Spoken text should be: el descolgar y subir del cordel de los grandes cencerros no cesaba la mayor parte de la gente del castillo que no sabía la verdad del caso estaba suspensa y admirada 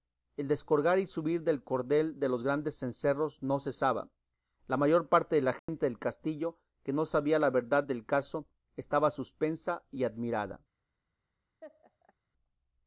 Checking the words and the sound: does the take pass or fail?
fail